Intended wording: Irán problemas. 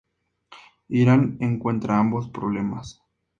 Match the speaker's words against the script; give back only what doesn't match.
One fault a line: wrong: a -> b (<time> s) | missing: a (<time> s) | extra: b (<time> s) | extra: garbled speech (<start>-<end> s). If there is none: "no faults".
extra: encuentra ambos (1.4 s)